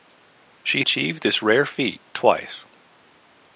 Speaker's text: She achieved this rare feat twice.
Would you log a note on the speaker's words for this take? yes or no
no